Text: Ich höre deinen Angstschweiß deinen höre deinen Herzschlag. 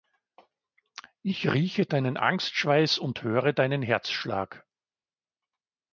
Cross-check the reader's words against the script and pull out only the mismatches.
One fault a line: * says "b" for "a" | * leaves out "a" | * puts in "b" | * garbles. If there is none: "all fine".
* says "rieche" for "höre"
* says "und" for "deinen"